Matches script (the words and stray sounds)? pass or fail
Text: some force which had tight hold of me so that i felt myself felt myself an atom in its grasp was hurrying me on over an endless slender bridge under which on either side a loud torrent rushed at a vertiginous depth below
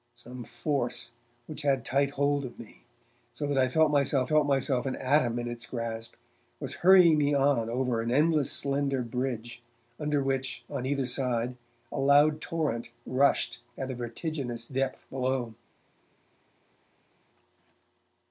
pass